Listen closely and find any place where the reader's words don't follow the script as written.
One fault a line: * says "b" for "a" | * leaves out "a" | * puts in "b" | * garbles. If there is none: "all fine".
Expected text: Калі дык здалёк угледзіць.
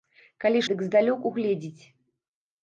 all fine